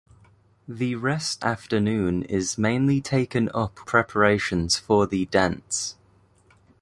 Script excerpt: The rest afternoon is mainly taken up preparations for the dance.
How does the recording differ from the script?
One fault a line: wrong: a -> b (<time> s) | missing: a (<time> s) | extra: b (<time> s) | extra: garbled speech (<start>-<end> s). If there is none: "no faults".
no faults